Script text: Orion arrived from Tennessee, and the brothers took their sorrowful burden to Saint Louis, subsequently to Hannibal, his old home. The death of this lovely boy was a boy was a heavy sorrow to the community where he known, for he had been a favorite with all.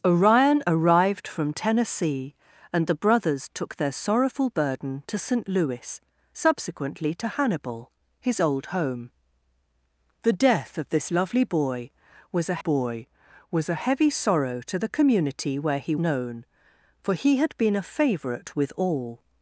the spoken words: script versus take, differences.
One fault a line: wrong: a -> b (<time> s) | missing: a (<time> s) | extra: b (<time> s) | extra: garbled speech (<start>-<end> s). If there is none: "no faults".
no faults